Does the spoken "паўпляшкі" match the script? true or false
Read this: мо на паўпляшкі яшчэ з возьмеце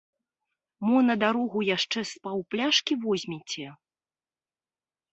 false